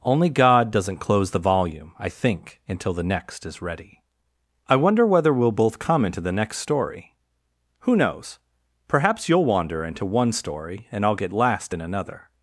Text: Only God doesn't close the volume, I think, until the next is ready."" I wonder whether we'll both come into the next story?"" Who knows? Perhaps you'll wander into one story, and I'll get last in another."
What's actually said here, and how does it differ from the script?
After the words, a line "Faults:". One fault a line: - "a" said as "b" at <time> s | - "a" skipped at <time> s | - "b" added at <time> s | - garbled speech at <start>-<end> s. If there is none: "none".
Only God doesn't close the volume, I think, until the next is ready."" I wonder whether we'll both come into the next story?"" Who knows? Perhaps you'll wander into one story, and I'll get last in another."
Faults:
none